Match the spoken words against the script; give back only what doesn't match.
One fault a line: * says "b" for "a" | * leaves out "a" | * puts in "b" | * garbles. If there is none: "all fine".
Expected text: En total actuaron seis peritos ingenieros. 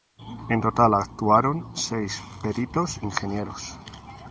all fine